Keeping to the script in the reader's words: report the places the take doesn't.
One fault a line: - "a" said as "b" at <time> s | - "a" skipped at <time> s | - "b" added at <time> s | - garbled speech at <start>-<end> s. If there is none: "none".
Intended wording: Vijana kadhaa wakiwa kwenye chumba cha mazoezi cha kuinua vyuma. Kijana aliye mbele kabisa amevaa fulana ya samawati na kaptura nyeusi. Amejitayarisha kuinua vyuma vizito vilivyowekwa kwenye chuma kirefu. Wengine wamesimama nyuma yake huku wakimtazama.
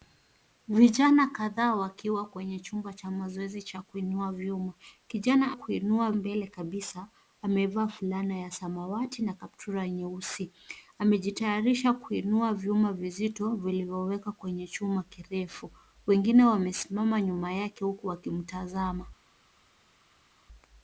- "aliye" said as "kuinua" at 5.5 s